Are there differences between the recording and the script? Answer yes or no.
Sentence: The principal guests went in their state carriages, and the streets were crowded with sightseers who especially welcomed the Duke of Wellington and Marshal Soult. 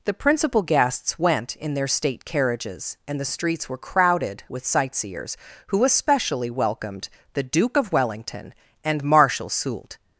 no